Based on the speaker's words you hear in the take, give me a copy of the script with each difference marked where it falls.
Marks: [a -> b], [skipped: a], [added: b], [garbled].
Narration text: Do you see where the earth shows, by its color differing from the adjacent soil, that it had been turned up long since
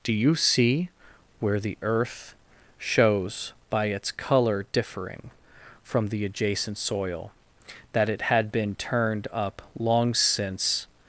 Do you see where the earth shows, by its color differing from the adjacent soil, that it had been turned up long since